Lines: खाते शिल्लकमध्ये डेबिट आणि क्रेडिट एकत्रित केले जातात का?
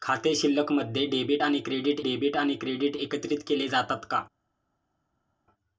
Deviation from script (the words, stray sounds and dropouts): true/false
true